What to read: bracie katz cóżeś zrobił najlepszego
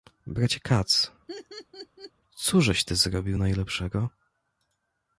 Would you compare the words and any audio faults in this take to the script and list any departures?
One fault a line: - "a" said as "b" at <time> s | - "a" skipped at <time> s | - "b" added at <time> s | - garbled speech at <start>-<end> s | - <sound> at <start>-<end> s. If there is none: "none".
- laugh at 1.3-2.1 s
- "ty" added at 2.8 s